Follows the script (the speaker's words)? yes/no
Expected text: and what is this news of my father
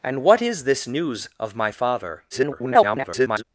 no